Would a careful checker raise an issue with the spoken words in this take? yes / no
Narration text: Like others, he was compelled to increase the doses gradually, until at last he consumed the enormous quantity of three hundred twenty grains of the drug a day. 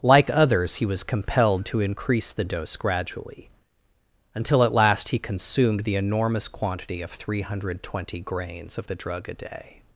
yes